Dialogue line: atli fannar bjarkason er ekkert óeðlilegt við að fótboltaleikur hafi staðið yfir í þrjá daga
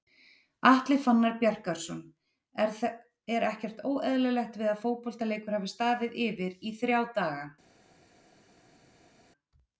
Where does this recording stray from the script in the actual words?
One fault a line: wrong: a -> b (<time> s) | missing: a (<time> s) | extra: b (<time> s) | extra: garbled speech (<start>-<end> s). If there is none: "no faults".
no faults